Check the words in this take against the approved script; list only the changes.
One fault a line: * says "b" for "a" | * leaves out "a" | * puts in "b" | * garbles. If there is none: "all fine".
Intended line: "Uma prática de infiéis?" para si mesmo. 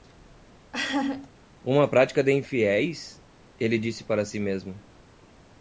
* puts in "ele disse"